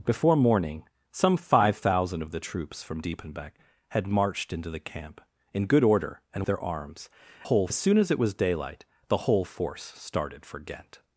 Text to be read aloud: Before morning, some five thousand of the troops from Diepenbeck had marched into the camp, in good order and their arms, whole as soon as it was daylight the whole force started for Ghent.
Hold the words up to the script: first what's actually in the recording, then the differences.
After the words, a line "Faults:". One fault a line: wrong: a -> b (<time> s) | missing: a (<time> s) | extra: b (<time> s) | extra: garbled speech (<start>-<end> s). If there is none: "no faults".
Before morning, some five thousand of the troops from Diepenbeck had marched into the camp, in good order and their arms, whole as soon as it was daylight the whole force started for Ghent.
Faults:
no faults